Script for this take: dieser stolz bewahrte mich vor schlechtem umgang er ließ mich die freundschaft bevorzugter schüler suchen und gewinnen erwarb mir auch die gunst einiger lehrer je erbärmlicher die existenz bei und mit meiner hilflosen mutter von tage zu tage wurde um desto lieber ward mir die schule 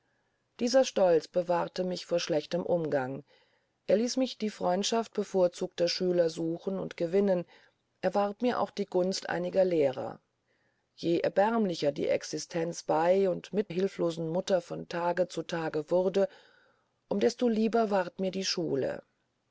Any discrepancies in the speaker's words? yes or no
yes